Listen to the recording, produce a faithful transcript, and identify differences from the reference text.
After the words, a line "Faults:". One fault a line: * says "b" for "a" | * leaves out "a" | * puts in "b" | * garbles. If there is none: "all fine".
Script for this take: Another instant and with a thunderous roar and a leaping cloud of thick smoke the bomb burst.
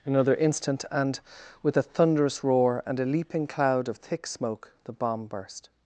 Another instant and with a thunderous roar and a leaping cloud of thick smoke the bomb burst.
Faults:
all fine